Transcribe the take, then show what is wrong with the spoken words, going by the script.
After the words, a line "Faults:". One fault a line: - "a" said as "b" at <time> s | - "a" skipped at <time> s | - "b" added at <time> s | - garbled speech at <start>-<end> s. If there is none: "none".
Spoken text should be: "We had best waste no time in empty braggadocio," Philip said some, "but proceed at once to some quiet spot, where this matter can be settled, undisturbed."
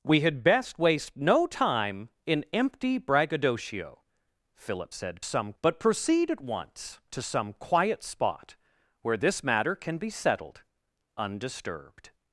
"We had best waste no time in empty braggadocio," Philip said some, "but proceed at once to some quiet spot, where this matter can be settled, undisturbed."
Faults:
none